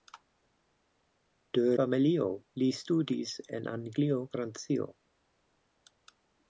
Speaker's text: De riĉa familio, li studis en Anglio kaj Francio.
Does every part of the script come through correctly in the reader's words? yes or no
no